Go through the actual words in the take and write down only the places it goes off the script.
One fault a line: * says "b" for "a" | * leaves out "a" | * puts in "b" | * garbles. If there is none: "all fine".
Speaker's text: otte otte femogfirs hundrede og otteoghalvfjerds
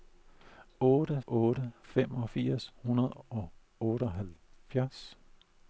all fine